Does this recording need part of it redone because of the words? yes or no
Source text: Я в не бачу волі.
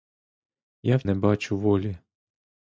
no